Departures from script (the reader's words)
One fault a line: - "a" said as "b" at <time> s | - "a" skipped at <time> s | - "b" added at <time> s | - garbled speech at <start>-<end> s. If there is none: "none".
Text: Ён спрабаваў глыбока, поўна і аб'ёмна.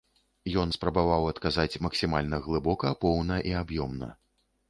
- "адказаць максімальна" added at 1.3 s